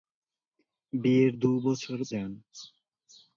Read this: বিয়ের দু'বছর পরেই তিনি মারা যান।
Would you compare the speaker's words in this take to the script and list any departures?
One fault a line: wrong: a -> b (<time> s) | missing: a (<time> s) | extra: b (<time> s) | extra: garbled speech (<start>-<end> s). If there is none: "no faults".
missing: পরেই তিনি মারা (2.0 s)